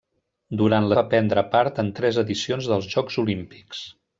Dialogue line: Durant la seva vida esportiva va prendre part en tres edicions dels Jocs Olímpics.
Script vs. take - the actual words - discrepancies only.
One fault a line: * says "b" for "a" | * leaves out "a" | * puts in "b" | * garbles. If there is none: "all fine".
* leaves out "seva vida esportiva"